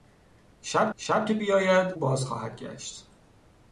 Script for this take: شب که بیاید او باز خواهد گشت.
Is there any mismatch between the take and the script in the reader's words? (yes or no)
yes